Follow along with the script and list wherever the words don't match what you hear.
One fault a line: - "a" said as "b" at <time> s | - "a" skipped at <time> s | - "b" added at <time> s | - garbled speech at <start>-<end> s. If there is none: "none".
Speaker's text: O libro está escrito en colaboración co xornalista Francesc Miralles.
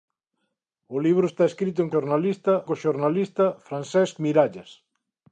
- "colaboración" said as "xornalista" at 1.9 s